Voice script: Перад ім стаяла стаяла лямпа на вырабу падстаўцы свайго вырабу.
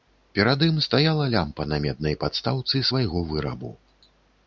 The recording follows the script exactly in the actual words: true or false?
false